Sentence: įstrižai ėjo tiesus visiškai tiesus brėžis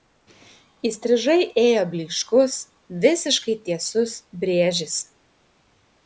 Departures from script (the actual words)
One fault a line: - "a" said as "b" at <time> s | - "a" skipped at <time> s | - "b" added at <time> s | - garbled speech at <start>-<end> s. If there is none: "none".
- "tiesus" said as "blyškus" at 1.9 s